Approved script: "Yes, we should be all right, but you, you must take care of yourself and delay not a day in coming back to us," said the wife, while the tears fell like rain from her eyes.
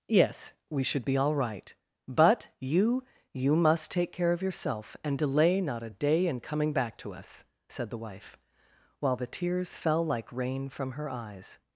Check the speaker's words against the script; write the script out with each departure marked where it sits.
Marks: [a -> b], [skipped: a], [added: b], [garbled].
"Yes, we should be all right, but you, you must take care of yourself and delay not a day in coming back to us," said the wife, while the tears fell like rain from her eyes.